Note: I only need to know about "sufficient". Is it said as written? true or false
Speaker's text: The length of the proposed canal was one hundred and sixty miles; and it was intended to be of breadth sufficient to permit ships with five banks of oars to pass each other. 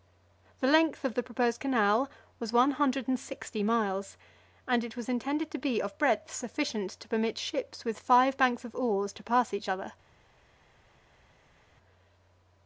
true